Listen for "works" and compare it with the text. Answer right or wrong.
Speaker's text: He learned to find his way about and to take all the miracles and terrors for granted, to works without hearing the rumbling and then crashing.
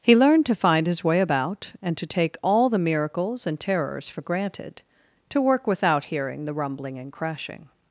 wrong